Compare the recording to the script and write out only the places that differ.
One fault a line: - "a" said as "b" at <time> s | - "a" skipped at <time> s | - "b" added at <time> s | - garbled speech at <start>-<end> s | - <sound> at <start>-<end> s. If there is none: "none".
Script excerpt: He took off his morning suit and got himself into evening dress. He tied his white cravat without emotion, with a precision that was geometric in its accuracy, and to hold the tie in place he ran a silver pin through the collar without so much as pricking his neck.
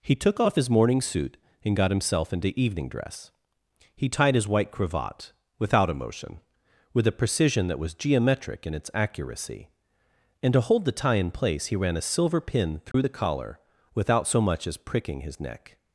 - dropout at 12.9-12.9 s